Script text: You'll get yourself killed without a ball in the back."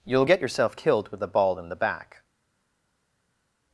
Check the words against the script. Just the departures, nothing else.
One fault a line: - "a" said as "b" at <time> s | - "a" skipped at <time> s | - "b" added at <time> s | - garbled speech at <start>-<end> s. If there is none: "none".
- "without" said as "with" at 1.1 s